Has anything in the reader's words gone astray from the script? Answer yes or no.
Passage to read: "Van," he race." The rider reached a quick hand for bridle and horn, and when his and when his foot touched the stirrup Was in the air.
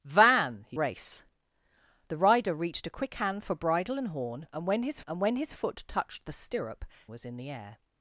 no